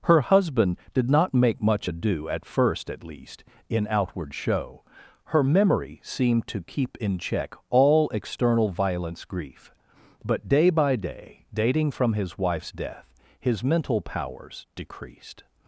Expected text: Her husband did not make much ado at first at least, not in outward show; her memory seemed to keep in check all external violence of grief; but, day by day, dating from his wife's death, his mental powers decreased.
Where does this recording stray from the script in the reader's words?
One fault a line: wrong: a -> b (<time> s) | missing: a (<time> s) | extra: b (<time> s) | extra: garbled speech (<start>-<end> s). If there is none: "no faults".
missing: not (3.4 s)
missing: of (9.2 s)